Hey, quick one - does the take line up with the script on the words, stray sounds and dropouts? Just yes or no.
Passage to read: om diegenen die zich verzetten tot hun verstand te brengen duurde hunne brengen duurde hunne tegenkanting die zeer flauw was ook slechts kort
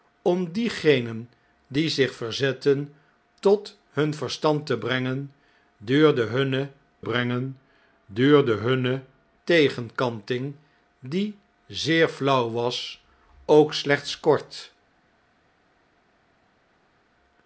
yes